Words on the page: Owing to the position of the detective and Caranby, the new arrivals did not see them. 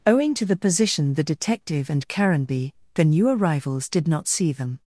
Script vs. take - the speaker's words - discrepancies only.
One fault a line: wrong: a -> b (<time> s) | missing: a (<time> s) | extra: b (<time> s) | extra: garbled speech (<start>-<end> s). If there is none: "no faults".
missing: of (1.1 s)